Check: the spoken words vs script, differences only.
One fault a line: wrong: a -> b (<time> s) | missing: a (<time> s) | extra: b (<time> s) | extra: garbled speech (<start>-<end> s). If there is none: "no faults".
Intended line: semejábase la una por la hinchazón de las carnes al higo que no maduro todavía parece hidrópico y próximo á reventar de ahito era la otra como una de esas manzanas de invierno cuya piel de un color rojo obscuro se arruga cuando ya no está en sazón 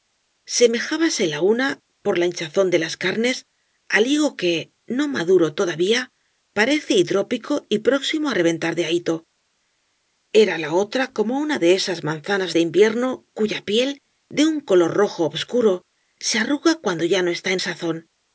no faults